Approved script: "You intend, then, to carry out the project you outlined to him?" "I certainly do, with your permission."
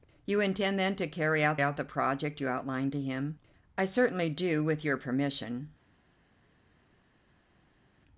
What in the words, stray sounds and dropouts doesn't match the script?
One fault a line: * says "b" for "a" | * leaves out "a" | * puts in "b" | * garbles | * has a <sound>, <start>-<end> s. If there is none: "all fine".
* puts in "out"